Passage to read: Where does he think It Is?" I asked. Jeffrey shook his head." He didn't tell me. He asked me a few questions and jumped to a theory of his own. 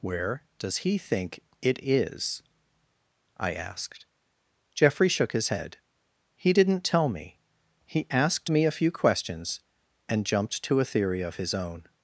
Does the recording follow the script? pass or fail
pass